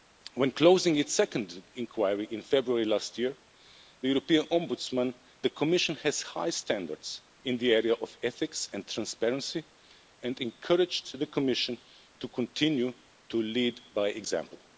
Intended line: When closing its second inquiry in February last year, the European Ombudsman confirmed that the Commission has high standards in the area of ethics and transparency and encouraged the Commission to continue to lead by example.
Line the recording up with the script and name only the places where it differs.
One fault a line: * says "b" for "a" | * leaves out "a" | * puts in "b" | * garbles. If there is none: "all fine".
* leaves out "confirmed that"